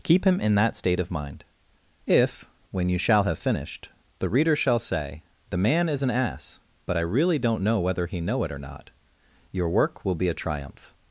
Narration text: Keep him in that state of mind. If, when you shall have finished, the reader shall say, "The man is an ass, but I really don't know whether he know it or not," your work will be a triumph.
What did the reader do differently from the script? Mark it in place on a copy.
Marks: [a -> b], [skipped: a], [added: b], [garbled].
Keep him in that state of mind. If, when you shall have finished, the reader shall say, "The man is an ass, but I really don't know whether he know it or not," your work will be a triumph.